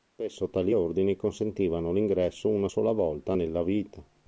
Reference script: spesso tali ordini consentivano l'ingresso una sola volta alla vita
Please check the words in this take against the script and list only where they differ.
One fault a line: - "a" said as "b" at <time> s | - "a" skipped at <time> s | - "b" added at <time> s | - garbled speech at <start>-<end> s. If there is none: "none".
- "alla" said as "nella" at 3.3 s